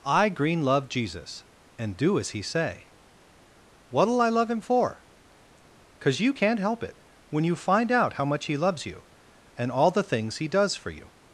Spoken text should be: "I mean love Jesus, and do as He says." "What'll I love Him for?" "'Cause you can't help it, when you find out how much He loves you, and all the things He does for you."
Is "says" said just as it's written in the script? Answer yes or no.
no